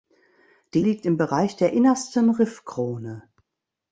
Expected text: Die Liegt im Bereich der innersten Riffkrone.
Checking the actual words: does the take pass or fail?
pass